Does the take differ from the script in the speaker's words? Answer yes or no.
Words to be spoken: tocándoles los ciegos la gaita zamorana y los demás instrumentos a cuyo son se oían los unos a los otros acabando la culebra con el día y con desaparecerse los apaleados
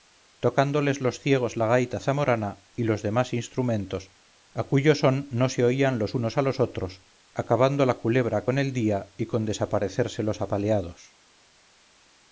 yes